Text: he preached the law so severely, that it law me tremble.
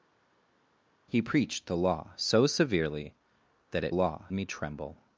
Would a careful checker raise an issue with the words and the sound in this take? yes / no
no